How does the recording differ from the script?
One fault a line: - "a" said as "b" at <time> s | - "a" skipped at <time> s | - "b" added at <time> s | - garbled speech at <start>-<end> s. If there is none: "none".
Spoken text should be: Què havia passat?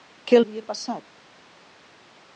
none